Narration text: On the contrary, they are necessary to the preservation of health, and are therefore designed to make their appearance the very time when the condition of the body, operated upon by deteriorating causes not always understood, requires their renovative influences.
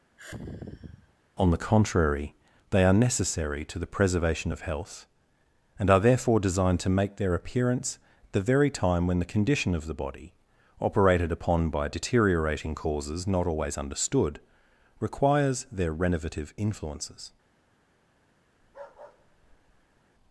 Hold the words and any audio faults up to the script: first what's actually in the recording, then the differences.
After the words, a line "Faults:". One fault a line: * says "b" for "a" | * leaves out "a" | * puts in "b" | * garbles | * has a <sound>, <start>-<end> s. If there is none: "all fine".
On the contrary, they are necessary to the preservation of health, and are therefore designed to make their appearance the very time when the condition of the body, operated upon by deteriorating causes not always understood, requires their renovative influences.
Faults:
* has a sigh, 0.2-1.1 s
* has a bark, 18.6-20.0 s